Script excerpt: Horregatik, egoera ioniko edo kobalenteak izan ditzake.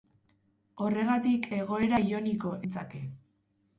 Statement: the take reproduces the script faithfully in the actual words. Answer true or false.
false